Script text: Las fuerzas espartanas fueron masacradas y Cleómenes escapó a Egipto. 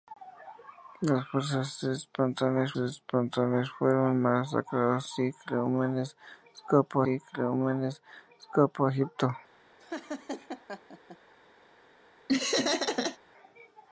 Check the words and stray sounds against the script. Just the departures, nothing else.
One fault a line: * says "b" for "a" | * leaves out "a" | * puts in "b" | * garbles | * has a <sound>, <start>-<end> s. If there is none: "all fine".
* puts in "espartanas"
* puts in "y Cleómenes escapó"
* has a laugh, 9.8-11.2 s
* has a laugh, 12.3-13.2 s